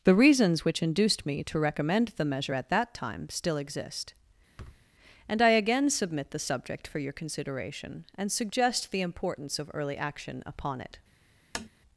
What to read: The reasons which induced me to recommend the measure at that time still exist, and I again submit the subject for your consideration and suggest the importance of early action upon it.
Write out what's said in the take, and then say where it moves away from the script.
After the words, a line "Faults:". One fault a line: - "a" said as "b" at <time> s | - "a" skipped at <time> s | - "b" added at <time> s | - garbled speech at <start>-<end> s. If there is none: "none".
The reasons which induced me to recommend the measure at that time still exist, and I again submit the subject for your consideration and suggest the importance of early action upon it.
Faults:
none